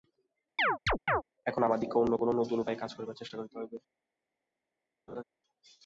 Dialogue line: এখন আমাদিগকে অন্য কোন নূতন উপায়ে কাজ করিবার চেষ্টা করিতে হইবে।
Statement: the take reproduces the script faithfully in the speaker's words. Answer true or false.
true